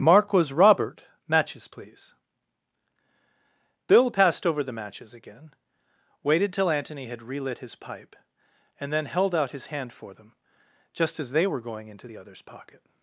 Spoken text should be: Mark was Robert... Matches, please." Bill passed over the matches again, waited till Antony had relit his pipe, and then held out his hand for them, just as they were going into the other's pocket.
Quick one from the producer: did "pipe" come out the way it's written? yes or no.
yes